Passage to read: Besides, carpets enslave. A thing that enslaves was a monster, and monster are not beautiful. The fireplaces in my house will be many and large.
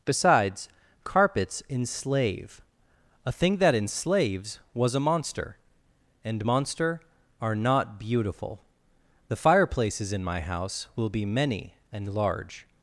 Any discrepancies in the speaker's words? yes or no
no